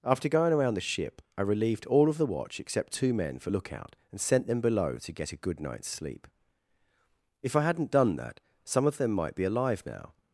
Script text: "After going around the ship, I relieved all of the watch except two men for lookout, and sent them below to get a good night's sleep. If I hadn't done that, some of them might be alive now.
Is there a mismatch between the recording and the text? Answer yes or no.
no